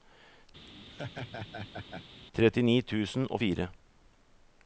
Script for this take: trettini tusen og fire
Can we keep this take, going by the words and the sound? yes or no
no